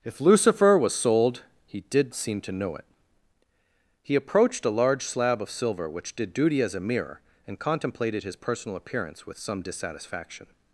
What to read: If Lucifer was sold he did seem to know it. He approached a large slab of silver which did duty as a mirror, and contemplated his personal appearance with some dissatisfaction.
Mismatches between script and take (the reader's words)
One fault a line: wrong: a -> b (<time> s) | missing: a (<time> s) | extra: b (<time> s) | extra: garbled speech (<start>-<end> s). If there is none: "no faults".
no faults